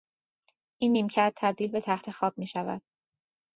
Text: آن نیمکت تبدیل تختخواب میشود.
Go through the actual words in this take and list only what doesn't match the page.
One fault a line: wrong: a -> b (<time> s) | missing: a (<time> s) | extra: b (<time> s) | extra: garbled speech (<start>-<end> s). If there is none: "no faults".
wrong: آن -> این (0.8 s)
extra: به (1.7 s)